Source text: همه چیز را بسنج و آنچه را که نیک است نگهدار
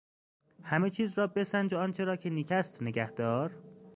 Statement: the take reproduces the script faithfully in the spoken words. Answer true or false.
true